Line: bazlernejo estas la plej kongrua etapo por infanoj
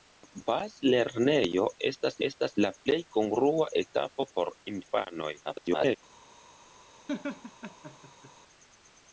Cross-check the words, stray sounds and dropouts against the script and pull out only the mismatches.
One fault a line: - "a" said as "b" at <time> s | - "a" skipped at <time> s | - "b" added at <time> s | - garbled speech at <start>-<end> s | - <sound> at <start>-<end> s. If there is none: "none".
- "estas" added at 2.3 s
- garbled speech at 5.4-6.0 s
- laugh at 7.1-8.3 s